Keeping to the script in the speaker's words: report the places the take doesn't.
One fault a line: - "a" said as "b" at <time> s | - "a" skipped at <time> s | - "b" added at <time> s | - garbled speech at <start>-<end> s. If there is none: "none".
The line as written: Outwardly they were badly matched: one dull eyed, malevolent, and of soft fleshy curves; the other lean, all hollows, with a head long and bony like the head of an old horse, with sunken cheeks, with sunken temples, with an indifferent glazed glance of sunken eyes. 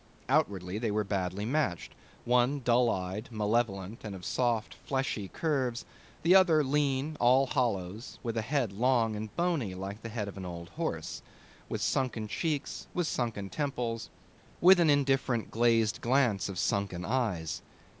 none